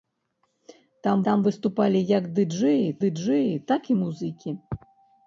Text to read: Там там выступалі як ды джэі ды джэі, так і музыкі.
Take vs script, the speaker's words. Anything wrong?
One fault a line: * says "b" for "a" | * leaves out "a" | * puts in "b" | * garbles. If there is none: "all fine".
all fine